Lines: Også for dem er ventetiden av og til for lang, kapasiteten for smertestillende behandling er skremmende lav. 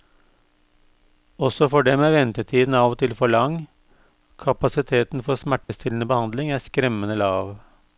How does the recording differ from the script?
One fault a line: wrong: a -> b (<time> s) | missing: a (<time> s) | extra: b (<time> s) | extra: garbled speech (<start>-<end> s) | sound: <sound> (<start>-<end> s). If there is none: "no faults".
sound: dropout (5.6-5.7 s)